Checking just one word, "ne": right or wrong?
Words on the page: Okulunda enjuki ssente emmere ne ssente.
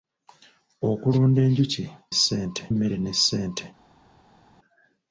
right